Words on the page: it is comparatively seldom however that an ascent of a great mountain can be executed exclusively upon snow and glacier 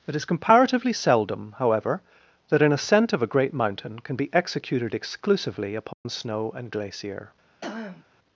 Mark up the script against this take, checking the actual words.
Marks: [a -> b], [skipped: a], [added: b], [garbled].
it is comparatively seldom however that an ascent of a great mountain can be executed exclusively upon snow and glacier